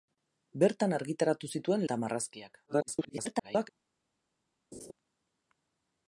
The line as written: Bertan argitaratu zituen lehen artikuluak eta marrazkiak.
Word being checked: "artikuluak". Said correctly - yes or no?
no